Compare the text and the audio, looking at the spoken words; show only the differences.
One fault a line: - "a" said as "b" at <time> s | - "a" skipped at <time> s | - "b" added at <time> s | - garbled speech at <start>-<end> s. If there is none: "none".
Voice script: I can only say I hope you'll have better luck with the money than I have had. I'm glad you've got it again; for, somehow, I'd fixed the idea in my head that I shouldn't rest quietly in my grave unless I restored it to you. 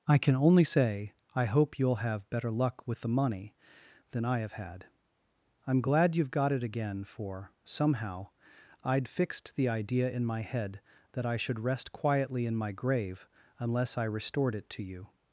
- "shouldn't" said as "should" at 11.4 s